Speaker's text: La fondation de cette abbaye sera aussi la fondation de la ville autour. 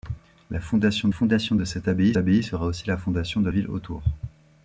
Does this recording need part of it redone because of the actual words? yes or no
yes